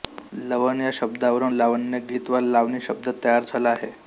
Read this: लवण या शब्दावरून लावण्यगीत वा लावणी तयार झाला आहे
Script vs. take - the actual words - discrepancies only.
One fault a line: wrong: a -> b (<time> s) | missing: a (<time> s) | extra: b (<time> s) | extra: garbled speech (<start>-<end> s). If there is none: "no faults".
extra: शब्द (2.8 s)